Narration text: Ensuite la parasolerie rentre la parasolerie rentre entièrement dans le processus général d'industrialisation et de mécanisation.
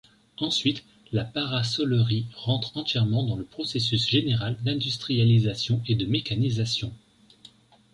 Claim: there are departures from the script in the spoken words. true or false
true